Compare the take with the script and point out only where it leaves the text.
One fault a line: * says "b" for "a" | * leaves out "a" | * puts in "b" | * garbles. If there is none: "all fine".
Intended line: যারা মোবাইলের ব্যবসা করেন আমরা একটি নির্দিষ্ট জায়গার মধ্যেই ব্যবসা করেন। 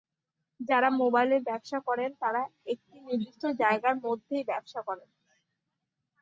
* says "তারা" for "আমরা"